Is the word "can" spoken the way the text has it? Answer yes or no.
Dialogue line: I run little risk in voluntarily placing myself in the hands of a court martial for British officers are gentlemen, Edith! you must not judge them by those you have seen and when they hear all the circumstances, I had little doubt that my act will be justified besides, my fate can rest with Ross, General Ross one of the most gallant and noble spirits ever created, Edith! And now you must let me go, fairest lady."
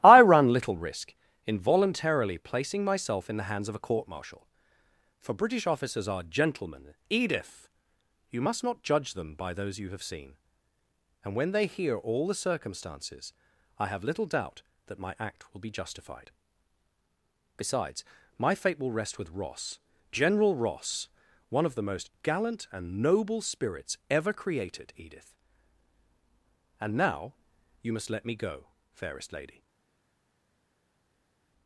no